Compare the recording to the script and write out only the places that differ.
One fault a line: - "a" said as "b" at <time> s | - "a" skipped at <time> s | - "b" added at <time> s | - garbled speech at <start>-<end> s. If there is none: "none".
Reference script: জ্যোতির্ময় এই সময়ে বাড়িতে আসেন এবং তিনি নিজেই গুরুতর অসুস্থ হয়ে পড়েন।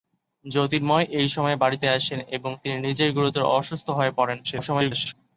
- garbled speech at 4.4-5.1 s